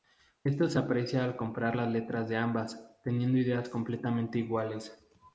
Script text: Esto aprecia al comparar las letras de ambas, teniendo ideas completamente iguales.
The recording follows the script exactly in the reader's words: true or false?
false